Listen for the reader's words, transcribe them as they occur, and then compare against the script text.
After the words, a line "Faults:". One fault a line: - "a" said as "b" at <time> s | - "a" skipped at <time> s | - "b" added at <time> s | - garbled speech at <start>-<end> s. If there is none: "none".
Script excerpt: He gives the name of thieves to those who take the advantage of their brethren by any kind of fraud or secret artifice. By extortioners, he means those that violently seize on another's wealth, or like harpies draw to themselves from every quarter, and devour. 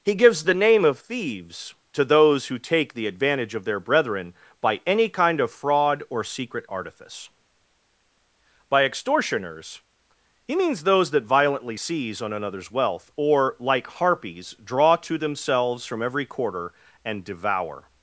He gives the name of thieves to those who take the advantage of their brethren by any kind of fraud or secret artifice. By extortioners, he means those that violently seize on another's wealth, or like harpies draw to themselves from every quarter, and devour.
Faults:
none